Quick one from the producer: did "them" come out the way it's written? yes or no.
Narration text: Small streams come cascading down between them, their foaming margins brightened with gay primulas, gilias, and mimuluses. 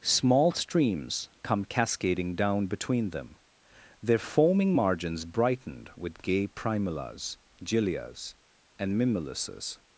yes